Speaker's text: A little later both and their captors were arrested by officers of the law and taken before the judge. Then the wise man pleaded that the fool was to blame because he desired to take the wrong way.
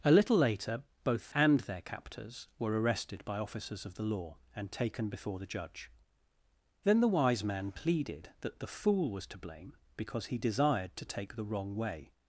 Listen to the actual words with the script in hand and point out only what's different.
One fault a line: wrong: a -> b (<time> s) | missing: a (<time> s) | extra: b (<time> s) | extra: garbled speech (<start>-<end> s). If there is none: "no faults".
no faults